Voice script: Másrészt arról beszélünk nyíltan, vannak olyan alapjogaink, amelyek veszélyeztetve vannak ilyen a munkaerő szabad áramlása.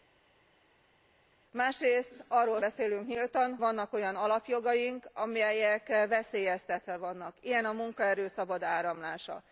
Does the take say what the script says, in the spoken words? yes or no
yes